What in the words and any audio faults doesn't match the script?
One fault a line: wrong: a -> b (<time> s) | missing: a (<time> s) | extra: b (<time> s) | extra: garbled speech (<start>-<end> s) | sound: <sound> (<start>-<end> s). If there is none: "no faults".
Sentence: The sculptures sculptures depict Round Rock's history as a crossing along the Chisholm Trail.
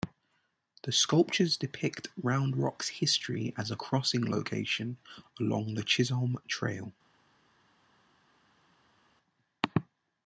missing: sculptures (1.6 s)
extra: location (4.3 s)